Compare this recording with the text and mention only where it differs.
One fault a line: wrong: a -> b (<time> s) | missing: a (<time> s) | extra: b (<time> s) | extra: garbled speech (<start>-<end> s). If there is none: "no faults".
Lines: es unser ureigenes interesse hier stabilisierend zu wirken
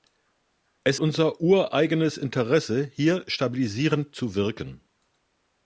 no faults